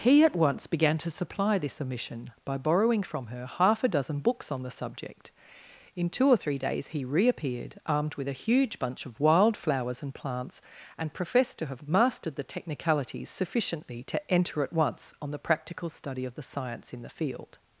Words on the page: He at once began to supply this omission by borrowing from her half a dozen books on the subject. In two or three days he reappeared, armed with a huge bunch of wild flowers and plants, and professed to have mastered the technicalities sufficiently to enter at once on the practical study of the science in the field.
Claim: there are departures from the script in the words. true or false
false